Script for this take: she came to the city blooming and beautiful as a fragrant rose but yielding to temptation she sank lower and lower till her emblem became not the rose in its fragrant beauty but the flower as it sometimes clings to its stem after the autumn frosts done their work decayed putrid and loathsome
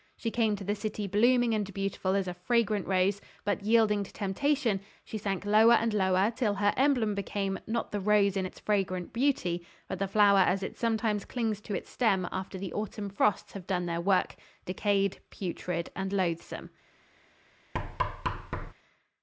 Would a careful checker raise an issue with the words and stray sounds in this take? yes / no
yes